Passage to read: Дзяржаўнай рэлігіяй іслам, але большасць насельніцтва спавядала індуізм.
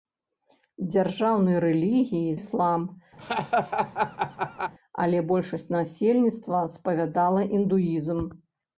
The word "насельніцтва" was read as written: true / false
true